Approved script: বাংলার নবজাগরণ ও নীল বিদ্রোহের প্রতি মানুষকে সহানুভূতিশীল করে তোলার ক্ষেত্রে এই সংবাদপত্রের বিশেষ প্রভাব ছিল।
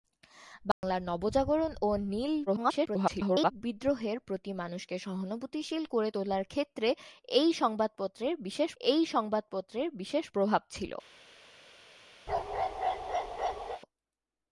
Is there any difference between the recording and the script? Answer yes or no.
yes